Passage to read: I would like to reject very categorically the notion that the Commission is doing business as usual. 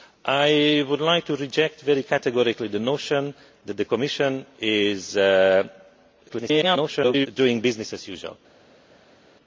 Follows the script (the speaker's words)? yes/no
no